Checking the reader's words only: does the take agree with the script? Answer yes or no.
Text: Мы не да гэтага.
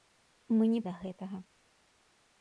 yes